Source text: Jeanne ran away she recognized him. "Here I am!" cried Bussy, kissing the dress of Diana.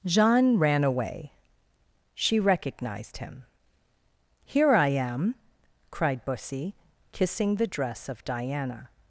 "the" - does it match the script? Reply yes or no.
yes